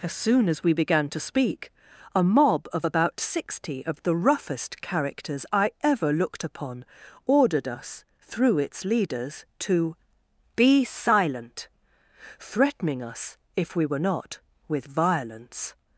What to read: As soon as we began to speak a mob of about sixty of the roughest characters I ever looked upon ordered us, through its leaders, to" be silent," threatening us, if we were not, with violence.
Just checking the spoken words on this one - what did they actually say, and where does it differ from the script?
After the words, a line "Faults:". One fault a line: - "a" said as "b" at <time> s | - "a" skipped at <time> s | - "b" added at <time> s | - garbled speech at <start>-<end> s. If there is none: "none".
As soon as we began to speak a mob of about sixty of the roughest characters I ever looked upon ordered us, through its leaders, to" be silent," threatening us, if we were not, with violence.
Faults:
none